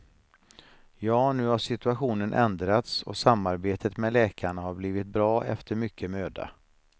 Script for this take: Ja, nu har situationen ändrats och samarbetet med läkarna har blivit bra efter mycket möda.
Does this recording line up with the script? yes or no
yes